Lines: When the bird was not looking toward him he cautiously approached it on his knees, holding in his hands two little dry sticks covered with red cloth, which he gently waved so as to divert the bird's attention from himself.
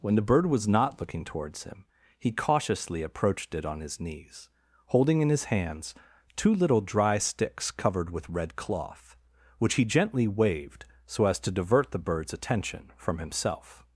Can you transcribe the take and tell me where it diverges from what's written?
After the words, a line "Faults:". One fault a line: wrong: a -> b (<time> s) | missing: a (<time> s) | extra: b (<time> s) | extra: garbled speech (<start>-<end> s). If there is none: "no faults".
When the bird was not looking towards him he cautiously approached it on his knees, holding in his hands two little dry sticks covered with red cloth, which he gently waved so as to divert the bird's attention from himself.
Faults:
wrong: toward -> towards (1.2 s)